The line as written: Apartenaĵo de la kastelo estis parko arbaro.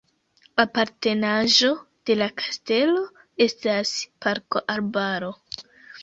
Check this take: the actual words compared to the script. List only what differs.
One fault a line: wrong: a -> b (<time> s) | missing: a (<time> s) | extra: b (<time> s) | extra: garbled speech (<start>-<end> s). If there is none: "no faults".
wrong: estis -> estas (3.5 s)